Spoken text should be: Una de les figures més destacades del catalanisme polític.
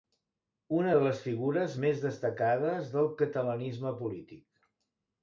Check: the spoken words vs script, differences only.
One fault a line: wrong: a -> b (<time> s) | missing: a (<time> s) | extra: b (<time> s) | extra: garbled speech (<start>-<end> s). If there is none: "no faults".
no faults